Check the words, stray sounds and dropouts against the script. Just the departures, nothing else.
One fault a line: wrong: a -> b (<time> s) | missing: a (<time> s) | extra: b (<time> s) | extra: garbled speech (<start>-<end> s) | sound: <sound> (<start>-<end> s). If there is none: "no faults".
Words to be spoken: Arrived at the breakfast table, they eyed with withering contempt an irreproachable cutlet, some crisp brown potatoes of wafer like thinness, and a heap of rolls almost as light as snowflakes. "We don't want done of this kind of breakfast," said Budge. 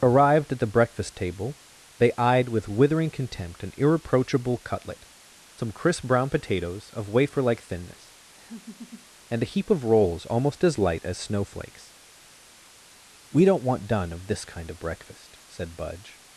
sound: laugh (8.4-9.1 s)